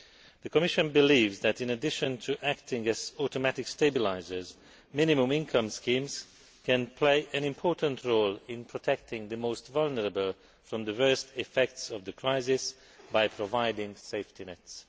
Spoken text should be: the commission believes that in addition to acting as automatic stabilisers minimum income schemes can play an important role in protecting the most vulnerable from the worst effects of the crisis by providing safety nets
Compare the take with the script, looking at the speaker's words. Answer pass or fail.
pass